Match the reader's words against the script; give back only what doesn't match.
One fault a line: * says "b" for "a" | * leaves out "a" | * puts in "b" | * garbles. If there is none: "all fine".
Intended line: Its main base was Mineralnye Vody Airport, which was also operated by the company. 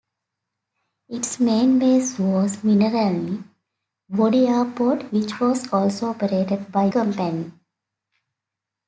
* leaves out "the"